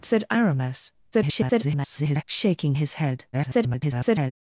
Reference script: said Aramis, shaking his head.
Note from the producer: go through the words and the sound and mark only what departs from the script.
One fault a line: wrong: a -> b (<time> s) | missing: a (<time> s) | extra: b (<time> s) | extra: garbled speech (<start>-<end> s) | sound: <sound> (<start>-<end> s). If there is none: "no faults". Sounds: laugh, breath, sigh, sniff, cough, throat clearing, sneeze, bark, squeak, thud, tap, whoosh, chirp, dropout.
extra: garbled speech (1.1-2.2 s)
extra: garbled speech (3.3-4.3 s)